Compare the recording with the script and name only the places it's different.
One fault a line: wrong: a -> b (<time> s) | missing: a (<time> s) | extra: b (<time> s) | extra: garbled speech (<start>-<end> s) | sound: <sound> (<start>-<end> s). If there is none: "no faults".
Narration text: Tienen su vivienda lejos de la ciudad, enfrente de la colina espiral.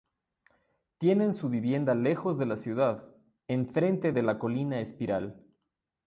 no faults